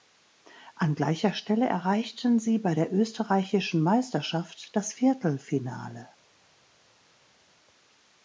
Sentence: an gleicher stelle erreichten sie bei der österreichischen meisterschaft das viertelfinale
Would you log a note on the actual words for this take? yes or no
no